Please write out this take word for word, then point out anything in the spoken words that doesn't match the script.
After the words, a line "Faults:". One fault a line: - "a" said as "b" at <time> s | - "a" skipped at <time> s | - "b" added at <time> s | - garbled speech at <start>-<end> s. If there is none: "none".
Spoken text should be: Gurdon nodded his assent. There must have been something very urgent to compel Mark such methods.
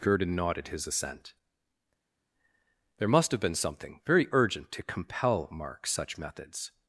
Gurdon nodded his assent. There must have been something very urgent to compel Mark such methods.
Faults:
none